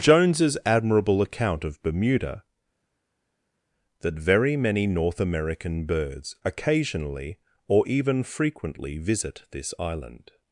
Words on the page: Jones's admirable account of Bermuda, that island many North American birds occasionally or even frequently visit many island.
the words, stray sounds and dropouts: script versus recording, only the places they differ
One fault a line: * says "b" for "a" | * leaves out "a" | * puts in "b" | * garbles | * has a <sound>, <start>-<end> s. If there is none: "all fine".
* says "very" for "island"
* says "this" for "many"